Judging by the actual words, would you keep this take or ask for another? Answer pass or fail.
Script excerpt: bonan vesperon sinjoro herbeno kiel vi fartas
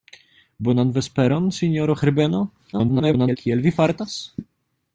fail